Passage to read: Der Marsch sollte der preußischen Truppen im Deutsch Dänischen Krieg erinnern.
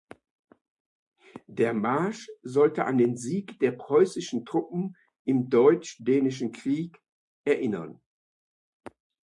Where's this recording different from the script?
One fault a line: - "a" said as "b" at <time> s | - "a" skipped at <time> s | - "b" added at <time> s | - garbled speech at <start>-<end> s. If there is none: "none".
- "an den Sieg" added at 2.9 s